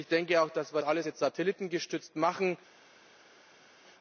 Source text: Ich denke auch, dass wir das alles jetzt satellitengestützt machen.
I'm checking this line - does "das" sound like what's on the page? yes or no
no